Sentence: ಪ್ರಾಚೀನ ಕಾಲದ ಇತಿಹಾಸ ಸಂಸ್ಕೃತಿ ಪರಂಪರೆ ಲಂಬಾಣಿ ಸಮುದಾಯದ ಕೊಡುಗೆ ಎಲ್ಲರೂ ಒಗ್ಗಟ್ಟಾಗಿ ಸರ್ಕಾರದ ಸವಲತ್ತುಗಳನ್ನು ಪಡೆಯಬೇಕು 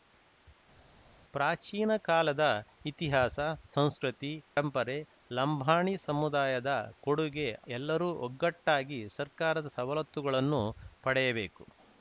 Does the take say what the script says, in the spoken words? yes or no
yes